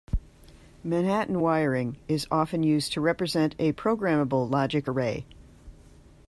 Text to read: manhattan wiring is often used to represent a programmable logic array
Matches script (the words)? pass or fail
pass